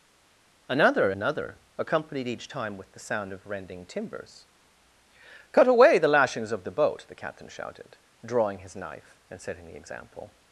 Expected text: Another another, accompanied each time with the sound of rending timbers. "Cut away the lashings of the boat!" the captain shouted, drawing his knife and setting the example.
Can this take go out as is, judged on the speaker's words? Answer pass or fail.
pass